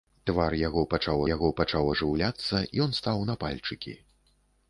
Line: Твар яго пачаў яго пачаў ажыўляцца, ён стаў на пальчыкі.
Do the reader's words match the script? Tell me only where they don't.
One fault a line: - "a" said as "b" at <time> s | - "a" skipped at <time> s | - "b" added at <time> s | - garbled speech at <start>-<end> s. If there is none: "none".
none